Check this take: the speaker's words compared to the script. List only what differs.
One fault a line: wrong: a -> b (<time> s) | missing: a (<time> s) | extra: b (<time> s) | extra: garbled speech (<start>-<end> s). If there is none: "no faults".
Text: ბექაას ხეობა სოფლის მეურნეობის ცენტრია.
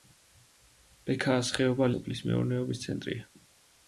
no faults